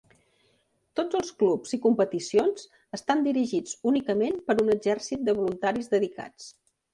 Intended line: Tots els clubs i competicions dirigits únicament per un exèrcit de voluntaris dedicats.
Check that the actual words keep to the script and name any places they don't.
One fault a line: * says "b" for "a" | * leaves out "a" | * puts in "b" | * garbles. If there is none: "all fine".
* puts in "estan"